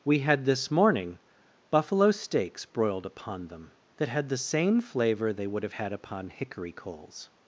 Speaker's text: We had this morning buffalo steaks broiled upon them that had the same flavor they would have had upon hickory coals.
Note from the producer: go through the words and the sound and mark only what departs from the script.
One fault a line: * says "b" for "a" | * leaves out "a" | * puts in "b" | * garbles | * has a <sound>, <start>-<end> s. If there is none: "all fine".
all fine